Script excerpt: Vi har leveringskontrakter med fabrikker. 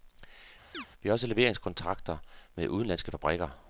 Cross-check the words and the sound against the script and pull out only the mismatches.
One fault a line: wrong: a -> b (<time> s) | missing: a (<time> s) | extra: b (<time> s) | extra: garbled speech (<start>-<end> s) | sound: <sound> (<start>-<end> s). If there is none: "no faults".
sound: chirp (0.7-0.9 s)
extra: også (1.1 s)
extra: udenlandske (2.7 s)